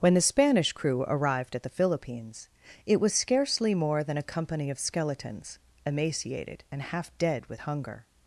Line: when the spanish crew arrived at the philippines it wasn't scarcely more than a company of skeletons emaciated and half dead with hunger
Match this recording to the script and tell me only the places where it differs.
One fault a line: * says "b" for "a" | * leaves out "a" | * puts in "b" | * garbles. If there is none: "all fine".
* says "was" for "wasn't"